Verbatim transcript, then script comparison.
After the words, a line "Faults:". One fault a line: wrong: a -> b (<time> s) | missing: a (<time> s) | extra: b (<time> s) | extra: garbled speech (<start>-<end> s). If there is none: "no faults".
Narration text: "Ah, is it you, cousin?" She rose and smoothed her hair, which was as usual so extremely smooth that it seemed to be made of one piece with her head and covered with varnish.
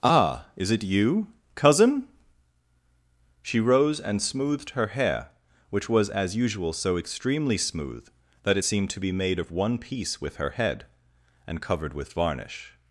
"Ah, is it you, cousin?" She rose and smoothed her hair, which was as usual so extremely smooth that it seemed to be made of one piece with her head and covered with varnish.
Faults:
no faults